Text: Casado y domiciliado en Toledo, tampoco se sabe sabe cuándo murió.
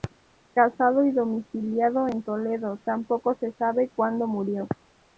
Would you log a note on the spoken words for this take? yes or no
yes